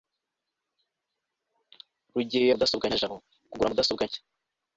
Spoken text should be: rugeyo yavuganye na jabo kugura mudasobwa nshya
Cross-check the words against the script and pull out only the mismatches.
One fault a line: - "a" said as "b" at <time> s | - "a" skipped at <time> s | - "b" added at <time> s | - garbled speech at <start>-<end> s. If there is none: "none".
- "yavuganye" said as "mudasobwa" at 2.5 s